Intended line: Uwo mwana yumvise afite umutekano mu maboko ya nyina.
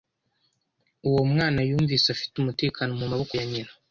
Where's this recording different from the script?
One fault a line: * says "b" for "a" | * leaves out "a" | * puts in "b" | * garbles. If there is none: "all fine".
all fine